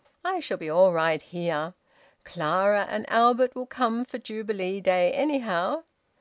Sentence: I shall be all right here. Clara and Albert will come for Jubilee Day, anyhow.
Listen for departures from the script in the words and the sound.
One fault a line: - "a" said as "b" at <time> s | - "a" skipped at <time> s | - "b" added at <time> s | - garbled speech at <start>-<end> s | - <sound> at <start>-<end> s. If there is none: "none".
none